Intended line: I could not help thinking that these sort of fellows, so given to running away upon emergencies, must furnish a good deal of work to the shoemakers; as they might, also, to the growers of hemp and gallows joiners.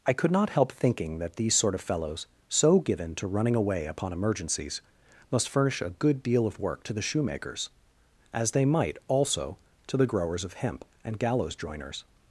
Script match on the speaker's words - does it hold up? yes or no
yes